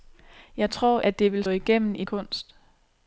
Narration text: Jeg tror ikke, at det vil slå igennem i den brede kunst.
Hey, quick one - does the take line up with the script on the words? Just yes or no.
no